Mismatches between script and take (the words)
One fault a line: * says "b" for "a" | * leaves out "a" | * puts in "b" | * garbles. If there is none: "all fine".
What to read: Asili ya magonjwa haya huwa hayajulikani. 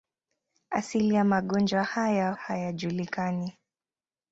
* leaves out "huwa"